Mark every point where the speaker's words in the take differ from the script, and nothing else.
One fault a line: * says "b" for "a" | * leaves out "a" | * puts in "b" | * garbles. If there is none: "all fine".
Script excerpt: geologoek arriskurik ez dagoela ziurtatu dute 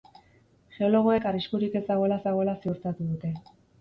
* puts in "dagoela"